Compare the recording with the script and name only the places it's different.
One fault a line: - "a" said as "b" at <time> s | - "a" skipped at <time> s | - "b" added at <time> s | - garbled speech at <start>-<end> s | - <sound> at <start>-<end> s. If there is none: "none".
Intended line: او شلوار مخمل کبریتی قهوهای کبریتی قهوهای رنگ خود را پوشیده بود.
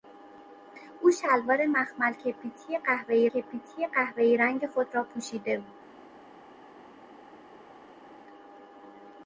none